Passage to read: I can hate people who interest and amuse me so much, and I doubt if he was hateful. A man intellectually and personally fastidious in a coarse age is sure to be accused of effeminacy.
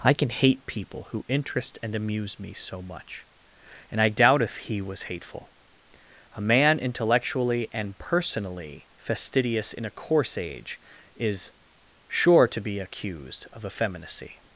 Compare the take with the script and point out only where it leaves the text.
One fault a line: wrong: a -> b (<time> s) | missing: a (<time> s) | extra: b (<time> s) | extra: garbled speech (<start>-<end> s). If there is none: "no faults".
no faults